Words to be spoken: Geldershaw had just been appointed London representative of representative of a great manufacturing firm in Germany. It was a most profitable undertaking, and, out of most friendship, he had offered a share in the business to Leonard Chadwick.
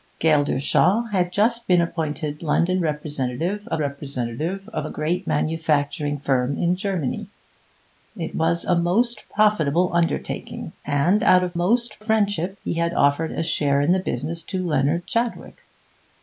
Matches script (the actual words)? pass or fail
pass